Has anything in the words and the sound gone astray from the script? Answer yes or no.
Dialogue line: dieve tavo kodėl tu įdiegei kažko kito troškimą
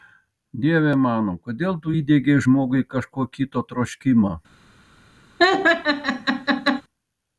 yes